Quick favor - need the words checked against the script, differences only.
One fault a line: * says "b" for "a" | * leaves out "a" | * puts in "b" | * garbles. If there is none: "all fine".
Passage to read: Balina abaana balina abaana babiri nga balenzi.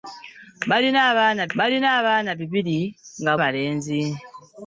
all fine